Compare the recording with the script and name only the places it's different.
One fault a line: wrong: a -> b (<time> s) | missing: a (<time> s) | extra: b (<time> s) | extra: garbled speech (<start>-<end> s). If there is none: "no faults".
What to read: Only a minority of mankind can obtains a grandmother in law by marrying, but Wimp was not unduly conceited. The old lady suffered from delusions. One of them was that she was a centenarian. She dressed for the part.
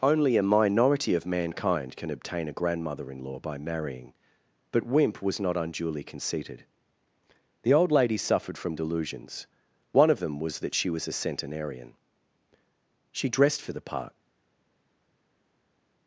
wrong: obtains -> obtain (2.1 s)